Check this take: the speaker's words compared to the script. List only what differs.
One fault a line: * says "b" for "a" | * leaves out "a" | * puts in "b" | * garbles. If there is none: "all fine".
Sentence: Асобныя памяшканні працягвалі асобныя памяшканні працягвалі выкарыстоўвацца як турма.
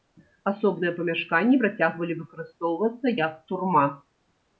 * leaves out "асобныя памяшканні працягвалі"